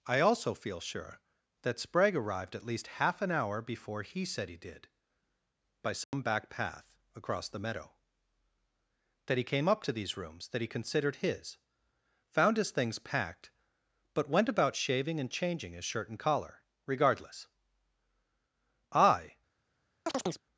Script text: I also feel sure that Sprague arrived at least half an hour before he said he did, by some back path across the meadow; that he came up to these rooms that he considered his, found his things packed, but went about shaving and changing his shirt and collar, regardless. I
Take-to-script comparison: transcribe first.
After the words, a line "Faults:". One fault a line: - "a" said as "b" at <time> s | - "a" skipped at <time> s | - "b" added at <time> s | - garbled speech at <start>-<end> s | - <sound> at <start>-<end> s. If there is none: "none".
I also feel sure that Sprague arrived at least half an hour before he said he did, by some back path across the meadow; that he came up to these rooms that he considered his, found his things packed, but went about shaving and changing his shirt and collar, regardless. I
Faults:
- dropout at 6.0-6.1 s
- chirp at 20.1-20.4 s